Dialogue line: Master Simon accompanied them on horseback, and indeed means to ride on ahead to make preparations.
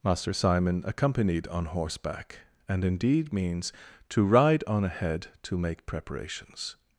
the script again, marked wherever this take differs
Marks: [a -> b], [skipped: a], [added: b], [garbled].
Master Simon accompanied [skipped: them] on horseback, and indeed means to ride on ahead to make preparations.